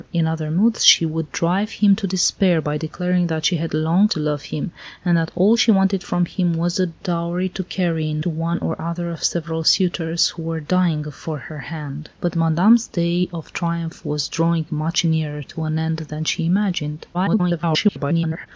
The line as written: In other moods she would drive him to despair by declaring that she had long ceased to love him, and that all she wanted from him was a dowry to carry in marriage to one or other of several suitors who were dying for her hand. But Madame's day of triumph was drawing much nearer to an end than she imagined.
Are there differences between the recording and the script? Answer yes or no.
yes